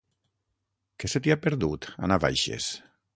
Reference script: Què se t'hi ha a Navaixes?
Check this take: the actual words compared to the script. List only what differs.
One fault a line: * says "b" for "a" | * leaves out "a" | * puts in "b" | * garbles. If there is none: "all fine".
* puts in "perdut"